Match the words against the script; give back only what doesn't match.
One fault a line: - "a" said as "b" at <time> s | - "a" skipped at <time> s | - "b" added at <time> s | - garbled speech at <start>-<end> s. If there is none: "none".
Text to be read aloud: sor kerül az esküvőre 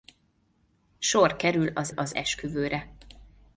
- "az" added at 1.9 s